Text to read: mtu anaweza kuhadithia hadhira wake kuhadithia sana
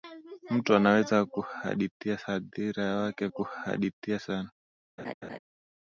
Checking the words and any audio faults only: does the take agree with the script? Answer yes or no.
no